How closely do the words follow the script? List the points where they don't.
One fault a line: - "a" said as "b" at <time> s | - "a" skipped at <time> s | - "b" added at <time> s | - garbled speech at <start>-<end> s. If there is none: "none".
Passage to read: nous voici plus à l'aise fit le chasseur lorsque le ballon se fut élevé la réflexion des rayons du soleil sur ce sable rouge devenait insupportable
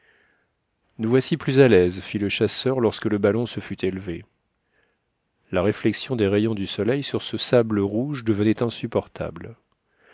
none